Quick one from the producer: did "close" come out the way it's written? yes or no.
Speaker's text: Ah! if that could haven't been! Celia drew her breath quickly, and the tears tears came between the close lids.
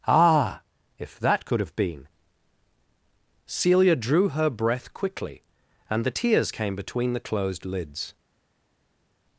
no